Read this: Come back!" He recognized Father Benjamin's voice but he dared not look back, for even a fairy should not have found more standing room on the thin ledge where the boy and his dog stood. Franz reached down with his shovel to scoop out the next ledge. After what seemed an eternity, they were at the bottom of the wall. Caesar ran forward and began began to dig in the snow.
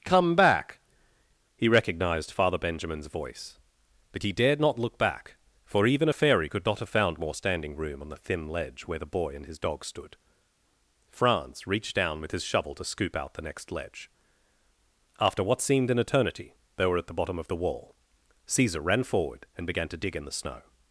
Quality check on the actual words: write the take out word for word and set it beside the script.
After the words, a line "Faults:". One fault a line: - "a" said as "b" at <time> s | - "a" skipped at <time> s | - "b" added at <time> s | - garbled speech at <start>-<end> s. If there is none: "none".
Come back!" He recognized Father Benjamin's voice but he dared not look back, for even a fairy could not have found more standing room on the thin ledge where the boy and his dog stood. Franz reached down with his shovel to scoop out the next ledge. After what seemed an eternity, they were at the bottom of the wall. Caesar ran forward and began to dig in the snow.
Faults:
- "should" said as "could" at 6.5 s
- "began" skipped at 19.9 s